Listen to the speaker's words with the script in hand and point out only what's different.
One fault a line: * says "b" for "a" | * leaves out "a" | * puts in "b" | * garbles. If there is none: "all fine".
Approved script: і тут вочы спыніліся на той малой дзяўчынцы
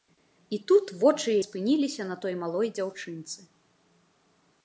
all fine